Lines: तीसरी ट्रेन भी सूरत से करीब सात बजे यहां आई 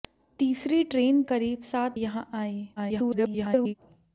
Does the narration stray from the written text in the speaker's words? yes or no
yes